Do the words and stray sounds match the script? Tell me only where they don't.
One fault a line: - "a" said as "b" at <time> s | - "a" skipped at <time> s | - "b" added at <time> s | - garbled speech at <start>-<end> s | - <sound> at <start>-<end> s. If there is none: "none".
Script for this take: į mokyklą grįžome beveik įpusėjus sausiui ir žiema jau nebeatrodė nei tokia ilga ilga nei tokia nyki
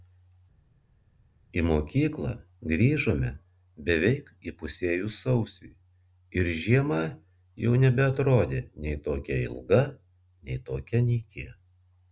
- "ilga" skipped at 9.8 s